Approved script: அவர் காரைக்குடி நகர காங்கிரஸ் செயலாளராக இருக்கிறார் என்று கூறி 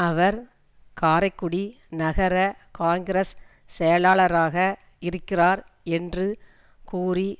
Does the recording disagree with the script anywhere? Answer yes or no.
no